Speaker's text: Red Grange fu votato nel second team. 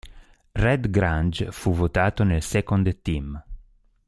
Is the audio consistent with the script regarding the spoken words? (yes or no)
yes